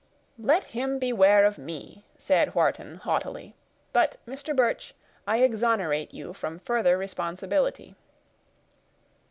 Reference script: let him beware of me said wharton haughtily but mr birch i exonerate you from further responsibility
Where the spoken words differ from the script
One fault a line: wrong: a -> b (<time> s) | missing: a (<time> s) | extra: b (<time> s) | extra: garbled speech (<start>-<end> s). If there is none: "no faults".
no faults